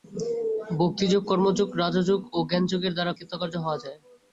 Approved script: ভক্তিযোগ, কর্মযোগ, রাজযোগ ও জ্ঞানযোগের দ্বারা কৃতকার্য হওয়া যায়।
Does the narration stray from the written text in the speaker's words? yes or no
no